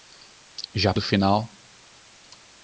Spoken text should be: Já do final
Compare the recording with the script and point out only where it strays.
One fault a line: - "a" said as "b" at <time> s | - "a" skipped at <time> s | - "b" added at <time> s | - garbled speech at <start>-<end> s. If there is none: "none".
none